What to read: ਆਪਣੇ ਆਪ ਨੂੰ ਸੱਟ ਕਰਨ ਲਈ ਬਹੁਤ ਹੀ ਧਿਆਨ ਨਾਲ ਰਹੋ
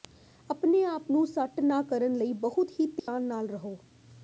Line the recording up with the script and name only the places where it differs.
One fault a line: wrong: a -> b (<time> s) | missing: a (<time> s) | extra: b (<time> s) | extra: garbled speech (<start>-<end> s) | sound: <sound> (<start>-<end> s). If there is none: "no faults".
extra: ਨਾ (1.6 s)
sound: dropout (3.0-3.1 s)